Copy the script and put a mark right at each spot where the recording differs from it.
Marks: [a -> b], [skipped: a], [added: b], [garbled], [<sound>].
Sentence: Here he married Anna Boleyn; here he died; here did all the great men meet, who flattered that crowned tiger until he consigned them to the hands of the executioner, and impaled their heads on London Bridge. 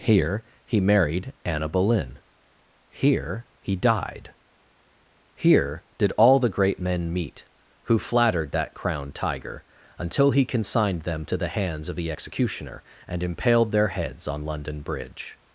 Here he married Anna Boleyn; here he died; here did all the great men meet, who flattered that crowned tiger until he consigned them to the hands of the executioner, and impaled their heads on London Bridge.